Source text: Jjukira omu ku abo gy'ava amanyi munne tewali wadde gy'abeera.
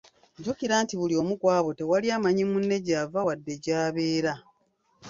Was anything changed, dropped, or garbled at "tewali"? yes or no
yes